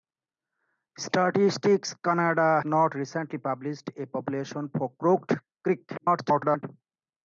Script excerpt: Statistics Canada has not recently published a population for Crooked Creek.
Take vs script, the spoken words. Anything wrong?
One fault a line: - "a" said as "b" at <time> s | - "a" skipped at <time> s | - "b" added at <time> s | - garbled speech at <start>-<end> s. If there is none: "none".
- "has" skipped at 2.6 s
- garbled speech at 6.0-6.6 s